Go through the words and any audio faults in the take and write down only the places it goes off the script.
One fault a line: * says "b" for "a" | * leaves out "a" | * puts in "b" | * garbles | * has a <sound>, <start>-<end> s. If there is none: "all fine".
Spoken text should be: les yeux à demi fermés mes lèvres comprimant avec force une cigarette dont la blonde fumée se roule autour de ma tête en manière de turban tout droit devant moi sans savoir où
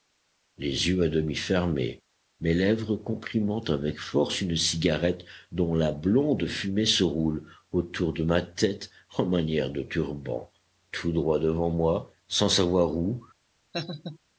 * has a laugh, 13.7-14.2 s